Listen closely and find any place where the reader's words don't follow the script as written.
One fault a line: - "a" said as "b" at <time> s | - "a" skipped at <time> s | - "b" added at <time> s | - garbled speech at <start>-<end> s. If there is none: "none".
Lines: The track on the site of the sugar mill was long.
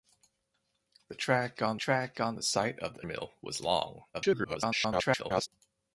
- "track on" added at 1.8 s
- "sugar" skipped at 3.1 s
- garbled speech at 4.1-5.5 s